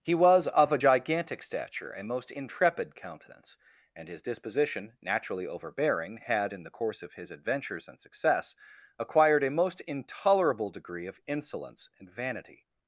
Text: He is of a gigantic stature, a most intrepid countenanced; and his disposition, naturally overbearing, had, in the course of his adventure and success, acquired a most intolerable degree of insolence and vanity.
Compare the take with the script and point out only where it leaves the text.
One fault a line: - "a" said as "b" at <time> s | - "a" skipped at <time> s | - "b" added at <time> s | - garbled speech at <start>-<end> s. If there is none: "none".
- "is" said as "was" at 0.1 s
- "countenanced" said as "countenance" at 2.9 s
- "adventure" said as "adventures" at 7.3 s